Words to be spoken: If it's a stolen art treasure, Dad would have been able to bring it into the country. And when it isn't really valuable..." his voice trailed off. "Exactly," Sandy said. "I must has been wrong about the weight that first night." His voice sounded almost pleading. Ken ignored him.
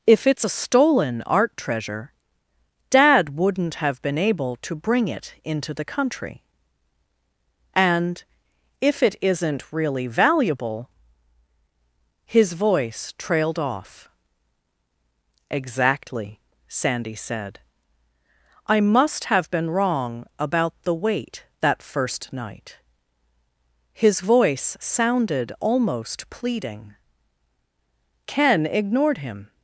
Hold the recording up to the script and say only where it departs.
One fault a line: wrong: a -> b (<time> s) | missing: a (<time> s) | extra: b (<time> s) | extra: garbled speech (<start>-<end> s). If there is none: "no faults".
wrong: would -> wouldn't (3.4 s)
wrong: when -> if (8.8 s)
wrong: has -> have (19.3 s)